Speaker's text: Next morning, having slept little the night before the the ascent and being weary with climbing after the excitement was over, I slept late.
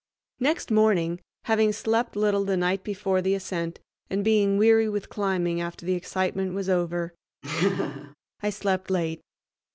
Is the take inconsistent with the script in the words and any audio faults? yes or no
yes